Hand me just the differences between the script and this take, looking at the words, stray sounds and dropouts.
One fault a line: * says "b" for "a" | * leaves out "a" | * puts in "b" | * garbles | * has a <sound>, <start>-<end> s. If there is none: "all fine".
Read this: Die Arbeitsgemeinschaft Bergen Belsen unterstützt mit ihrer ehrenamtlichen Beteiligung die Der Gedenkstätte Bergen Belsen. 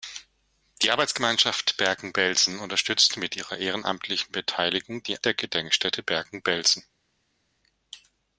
all fine